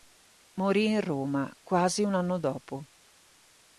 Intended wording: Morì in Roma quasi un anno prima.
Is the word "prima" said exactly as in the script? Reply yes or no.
no